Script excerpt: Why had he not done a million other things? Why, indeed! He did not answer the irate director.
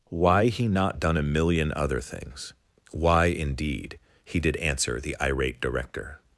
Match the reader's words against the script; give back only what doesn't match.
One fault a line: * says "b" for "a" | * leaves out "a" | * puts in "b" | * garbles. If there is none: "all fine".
* leaves out "had"
* leaves out "not"